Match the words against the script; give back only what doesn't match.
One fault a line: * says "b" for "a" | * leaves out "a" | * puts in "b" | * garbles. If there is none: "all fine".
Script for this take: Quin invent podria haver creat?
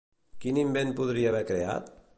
all fine